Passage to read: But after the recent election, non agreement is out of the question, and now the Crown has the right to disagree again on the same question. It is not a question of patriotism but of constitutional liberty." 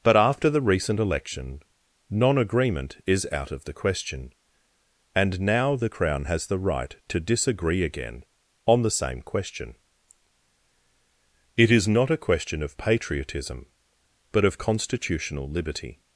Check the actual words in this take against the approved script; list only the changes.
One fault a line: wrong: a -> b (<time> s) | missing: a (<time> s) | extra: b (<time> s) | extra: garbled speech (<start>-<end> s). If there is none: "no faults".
no faults